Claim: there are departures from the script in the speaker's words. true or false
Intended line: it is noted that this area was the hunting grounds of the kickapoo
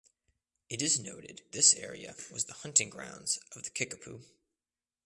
true